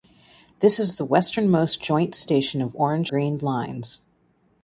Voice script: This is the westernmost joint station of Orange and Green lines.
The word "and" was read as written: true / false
false